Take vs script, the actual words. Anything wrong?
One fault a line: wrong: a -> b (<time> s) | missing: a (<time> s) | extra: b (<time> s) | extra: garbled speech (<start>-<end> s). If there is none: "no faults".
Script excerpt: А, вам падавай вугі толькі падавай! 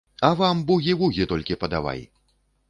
wrong: падавай -> бугі (0.7 s)